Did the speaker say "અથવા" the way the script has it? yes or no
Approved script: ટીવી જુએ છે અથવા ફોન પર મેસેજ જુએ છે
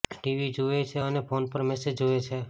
no